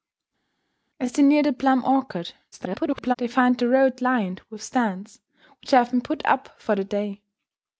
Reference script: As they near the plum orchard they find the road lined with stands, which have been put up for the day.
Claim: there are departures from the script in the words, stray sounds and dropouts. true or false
true